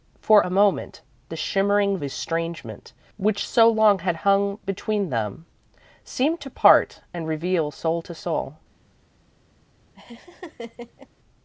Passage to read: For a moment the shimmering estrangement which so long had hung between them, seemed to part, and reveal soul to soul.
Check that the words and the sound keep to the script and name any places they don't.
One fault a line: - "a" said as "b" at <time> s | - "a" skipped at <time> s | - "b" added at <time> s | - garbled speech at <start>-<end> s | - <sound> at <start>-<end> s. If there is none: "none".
- laugh at 10.0-11.1 s